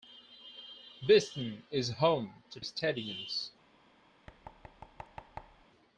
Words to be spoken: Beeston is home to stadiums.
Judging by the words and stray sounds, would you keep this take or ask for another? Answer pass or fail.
fail